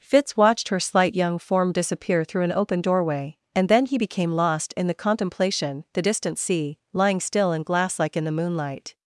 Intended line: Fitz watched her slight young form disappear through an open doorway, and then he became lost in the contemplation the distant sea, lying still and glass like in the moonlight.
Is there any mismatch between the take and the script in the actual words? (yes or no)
no